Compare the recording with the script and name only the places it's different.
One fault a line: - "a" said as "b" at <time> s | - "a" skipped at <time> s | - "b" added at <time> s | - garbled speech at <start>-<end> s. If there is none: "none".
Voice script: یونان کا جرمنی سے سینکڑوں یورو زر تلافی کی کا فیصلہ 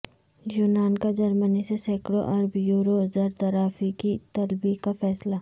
- "ارب" added at 2.3 s
- "طلبی" added at 4.3 s